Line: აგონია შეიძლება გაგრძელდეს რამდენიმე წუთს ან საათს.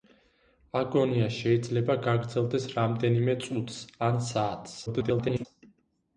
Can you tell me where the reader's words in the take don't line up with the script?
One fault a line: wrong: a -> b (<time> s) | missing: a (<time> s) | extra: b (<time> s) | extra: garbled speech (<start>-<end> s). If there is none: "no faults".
extra: garbled speech (4.9-5.5 s)